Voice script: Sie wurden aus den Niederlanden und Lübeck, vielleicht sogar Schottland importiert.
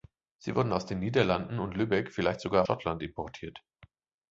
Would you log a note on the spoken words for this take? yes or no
no